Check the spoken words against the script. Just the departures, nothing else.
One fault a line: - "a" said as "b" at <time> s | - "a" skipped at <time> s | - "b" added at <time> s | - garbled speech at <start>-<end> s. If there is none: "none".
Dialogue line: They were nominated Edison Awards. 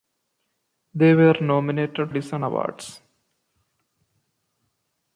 none